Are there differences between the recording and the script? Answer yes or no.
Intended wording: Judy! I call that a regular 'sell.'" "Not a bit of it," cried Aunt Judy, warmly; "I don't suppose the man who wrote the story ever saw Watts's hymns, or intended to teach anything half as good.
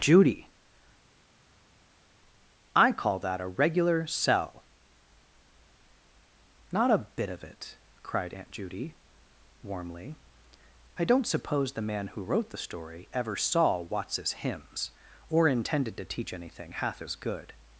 no